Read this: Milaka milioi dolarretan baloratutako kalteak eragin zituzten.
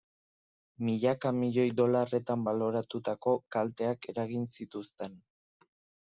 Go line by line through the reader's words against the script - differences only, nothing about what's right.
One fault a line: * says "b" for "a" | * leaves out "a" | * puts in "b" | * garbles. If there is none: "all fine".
all fine